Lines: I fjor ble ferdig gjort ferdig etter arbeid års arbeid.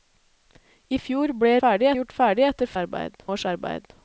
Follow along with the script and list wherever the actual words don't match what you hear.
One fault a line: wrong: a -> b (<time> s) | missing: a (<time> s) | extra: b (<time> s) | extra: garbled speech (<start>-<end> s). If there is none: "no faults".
no faults